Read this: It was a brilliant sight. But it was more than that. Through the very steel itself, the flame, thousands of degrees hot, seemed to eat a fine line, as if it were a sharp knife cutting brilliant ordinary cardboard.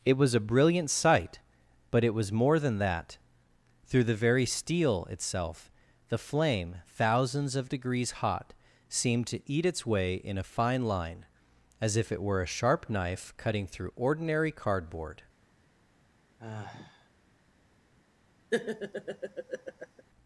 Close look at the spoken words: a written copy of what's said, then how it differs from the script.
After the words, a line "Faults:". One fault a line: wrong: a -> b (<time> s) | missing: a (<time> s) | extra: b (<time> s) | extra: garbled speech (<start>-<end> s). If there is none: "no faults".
It was a brilliant sight. But it was more than that. Through the very steel itself, the flame, thousands of degrees hot, seemed to eat its way in a fine line, as if it were a sharp knife cutting through ordinary cardboard.
Faults:
extra: its way in (9.7 s)
wrong: brilliant -> through (13.7 s)